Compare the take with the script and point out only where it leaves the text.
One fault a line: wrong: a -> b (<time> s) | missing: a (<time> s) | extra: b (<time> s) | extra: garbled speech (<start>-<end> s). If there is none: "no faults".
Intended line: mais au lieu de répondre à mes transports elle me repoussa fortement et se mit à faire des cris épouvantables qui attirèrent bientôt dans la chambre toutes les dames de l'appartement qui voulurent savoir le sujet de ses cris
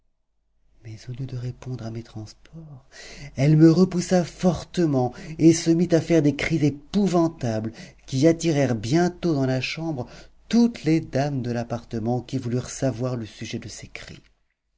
no faults